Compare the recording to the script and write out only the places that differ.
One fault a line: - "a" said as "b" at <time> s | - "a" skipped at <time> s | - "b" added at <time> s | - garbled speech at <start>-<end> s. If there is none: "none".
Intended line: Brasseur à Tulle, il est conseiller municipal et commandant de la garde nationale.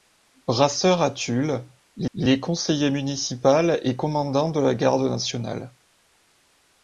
- "il" added at 2.1 s